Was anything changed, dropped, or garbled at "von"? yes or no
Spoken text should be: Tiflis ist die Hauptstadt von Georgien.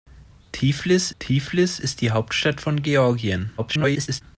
no